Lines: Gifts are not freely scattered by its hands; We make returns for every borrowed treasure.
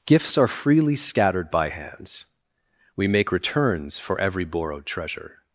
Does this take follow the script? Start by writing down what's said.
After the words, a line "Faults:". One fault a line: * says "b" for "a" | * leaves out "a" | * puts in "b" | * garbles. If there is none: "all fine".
Gifts are freely scattered by hands; We make returns for every borrowed treasure.
Faults:
* leaves out "not"
* leaves out "its"